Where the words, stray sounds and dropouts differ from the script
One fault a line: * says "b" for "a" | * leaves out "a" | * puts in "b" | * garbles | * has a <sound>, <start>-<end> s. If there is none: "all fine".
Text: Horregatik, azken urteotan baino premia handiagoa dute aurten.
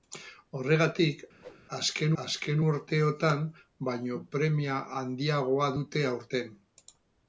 * has a whoosh, 1.4-1.6 s
* puts in "azken"